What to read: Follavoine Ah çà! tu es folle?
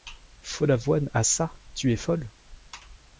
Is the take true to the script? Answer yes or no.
yes